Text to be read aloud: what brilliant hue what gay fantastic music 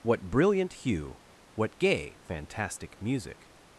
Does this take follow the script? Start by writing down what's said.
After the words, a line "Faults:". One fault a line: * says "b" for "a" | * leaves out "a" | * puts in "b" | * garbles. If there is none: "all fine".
what brilliant hue what gay fantastic music
Faults:
all fine